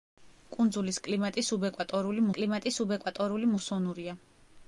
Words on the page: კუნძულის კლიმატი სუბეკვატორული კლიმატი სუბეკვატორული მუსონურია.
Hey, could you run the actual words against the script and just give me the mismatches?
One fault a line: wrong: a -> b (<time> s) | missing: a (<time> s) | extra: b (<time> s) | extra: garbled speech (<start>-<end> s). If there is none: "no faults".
no faults